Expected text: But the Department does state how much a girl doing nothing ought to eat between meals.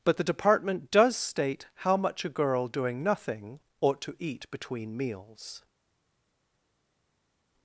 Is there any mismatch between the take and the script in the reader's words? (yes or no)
no